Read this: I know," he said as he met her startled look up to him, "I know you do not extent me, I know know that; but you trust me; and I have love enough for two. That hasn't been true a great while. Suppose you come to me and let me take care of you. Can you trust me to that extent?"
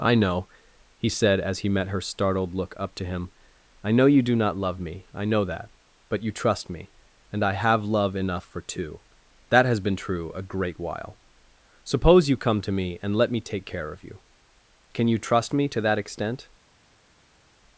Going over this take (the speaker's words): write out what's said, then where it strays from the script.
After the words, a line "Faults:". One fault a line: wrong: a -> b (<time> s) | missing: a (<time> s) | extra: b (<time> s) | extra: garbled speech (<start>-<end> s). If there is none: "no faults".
I know," he said as he met her startled look up to him, "I know you do not love me, I know that; but you trust me; and I have love enough for two. That has been true a great while. Suppose you come to me and let me take care of you. Can you trust me to that extent?"
Faults:
wrong: extent -> love (4.6 s)
missing: know (5.5 s)
wrong: hasn't -> has (9.7 s)